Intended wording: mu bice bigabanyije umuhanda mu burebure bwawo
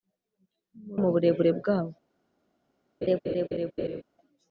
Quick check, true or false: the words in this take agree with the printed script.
false